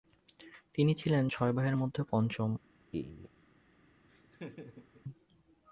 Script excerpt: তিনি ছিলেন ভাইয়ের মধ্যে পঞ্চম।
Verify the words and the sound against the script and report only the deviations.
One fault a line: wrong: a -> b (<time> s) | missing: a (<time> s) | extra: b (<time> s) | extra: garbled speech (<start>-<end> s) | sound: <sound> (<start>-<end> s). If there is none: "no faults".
extra: ছয় (1.3 s)
sound: laugh (2.9-3.3 s)
sound: laugh (4.1-5.0 s)